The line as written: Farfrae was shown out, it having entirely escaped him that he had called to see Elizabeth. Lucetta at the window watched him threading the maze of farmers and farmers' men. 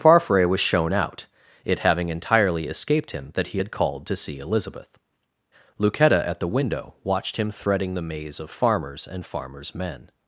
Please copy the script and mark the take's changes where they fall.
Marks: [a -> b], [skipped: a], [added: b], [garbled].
Farfrae was shown out, it having entirely escaped him that he had called to see Elizabeth. Lucetta at the window watched him threading the maze of farmers and farmers' men.